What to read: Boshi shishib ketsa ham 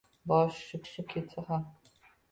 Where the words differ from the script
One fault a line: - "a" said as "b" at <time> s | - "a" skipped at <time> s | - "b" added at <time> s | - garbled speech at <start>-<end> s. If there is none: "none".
- "shishib" added at 0.9 s